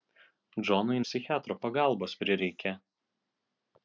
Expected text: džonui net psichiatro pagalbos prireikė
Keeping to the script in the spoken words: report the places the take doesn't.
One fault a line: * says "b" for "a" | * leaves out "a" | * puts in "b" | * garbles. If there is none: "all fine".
* leaves out "net"